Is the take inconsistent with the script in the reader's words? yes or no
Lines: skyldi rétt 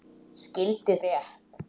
no